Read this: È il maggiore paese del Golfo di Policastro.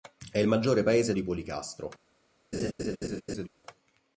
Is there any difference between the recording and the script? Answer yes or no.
yes